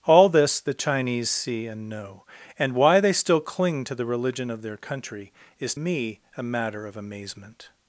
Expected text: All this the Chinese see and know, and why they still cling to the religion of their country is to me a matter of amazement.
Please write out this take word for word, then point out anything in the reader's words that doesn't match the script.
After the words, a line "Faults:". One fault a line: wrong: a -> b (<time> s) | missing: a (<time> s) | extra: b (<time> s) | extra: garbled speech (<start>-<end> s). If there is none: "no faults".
All this the Chinese see and know, and why they still cling to the religion of their country is me a matter of amazement.
Faults:
missing: to (5.8 s)